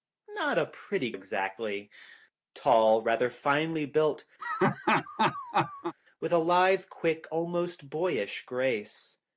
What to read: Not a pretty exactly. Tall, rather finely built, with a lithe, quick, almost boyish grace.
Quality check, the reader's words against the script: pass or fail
pass